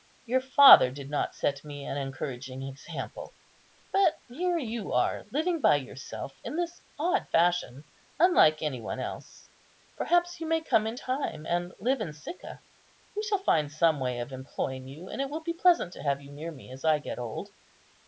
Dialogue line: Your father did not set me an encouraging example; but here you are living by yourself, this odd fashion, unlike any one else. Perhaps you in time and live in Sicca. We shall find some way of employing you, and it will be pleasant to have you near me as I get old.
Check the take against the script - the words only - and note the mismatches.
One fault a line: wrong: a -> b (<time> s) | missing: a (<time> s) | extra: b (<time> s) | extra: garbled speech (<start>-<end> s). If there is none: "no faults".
extra: in (6.4 s)
extra: may come (10.5 s)